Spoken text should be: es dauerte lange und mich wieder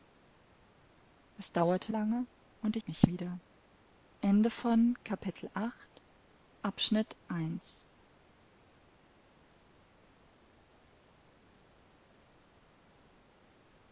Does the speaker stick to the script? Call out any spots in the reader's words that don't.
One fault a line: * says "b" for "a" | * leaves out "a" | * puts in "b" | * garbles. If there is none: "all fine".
all fine